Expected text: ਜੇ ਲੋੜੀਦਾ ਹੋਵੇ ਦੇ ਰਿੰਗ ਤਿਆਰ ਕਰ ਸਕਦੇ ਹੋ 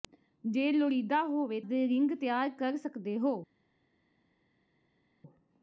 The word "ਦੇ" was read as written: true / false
true